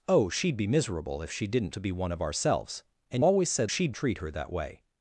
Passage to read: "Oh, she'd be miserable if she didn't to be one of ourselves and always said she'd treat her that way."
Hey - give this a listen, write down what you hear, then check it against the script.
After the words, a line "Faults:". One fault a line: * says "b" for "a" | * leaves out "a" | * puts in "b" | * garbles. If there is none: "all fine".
"Oh, she'd be miserable if she didn't to be one of ourselves and always said she'd treat her that way."
Faults:
all fine